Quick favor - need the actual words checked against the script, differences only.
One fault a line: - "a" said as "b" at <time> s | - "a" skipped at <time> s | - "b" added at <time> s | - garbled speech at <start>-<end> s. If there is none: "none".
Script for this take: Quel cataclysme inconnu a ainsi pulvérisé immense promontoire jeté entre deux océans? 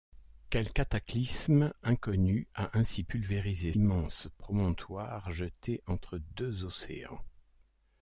none